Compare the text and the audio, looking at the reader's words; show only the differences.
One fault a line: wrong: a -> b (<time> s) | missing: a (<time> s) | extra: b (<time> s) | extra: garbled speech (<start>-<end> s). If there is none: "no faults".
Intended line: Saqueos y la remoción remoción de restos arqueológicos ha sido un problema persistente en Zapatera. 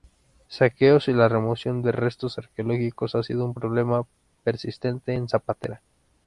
missing: remoción (1.8 s)